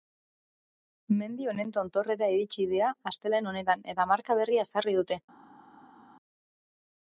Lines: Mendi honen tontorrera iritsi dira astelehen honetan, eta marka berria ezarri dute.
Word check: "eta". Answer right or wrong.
right